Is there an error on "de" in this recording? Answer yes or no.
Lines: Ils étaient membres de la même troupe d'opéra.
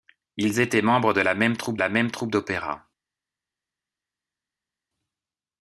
no